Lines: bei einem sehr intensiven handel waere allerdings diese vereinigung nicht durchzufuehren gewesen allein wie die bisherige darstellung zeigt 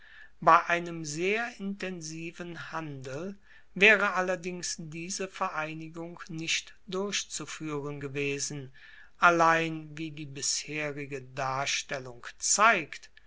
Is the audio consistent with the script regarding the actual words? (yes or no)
yes